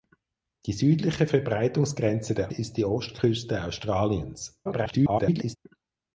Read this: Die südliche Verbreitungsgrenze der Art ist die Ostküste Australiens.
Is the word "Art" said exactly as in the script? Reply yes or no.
no